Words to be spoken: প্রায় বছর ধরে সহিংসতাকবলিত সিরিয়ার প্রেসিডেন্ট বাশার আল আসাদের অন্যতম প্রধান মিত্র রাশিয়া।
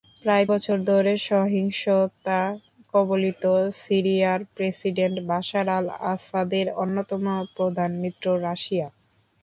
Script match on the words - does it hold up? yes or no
yes